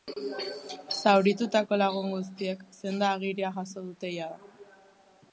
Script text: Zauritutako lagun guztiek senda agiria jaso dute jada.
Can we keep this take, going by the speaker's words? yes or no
yes